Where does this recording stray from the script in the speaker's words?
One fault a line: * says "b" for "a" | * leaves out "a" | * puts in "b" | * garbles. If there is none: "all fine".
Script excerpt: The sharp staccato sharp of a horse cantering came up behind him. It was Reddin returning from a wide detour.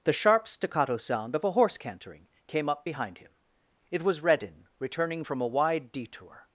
* says "sound" for "sharp"